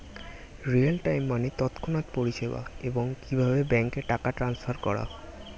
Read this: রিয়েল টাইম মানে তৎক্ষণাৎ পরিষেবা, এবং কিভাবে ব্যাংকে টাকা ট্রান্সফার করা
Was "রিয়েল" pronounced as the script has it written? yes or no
yes